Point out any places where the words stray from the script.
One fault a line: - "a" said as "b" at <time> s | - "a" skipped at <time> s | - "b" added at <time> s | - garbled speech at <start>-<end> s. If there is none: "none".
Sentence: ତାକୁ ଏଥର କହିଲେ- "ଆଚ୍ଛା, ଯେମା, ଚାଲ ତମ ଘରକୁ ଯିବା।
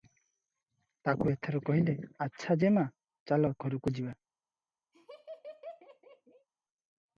- "ତମ" skipped at 3.5 s